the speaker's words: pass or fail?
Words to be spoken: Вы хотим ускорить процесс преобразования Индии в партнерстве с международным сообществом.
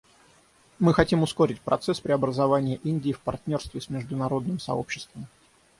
fail